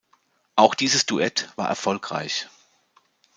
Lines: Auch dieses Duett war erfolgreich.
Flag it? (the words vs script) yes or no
no